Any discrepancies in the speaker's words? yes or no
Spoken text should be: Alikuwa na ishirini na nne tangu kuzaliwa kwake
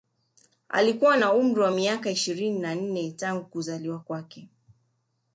yes